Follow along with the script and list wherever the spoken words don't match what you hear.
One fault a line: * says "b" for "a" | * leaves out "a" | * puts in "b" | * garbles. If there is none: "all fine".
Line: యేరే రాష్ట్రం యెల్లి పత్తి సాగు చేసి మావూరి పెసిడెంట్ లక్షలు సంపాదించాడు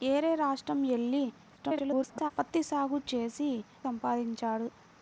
* garbles
* leaves out "మావూరి పెసిడెంట్ లక్షలు"